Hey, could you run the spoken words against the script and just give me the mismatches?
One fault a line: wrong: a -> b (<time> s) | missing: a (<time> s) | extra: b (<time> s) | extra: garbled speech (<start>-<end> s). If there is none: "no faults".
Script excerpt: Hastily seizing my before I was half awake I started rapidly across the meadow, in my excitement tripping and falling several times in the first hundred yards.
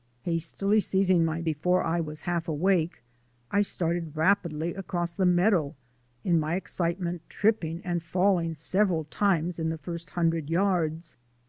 no faults